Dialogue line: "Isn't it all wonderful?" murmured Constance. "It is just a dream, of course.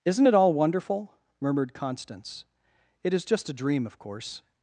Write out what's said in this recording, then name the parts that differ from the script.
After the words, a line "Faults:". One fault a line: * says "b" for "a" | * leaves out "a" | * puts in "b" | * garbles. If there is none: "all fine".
"Isn't it all wonderful?" murmured Constance. "It is just a dream, of course.
Faults:
all fine